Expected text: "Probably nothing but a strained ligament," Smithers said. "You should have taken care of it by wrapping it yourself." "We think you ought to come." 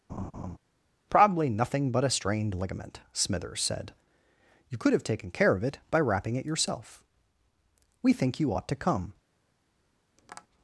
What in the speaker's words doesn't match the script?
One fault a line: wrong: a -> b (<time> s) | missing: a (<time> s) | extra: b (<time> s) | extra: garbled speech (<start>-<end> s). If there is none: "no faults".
wrong: should -> could (4.8 s)